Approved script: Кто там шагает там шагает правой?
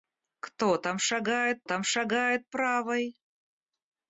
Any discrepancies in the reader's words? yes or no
no